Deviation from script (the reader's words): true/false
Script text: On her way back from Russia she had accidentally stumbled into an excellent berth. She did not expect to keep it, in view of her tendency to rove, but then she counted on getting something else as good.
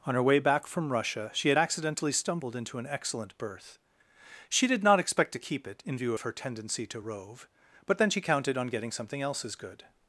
false